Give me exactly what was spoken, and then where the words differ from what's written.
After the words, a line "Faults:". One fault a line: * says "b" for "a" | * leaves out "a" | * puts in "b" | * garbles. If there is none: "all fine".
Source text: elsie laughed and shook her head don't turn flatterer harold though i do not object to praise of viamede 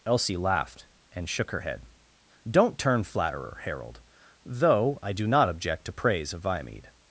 elsie laughed and shook her head don't turn flatterer harold though i do not object to praise of viamede
Faults:
all fine